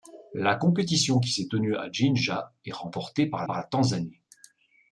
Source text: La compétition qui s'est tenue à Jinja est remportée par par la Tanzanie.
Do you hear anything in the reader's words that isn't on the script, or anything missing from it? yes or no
no